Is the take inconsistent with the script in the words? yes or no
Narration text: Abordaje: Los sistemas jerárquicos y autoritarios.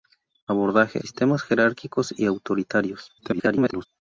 yes